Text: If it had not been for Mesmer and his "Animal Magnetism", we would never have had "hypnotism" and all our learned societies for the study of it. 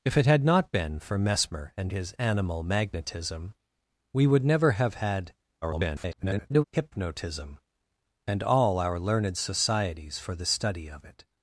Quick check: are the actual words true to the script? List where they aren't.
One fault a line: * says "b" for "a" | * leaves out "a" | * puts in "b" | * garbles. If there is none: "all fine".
* garbles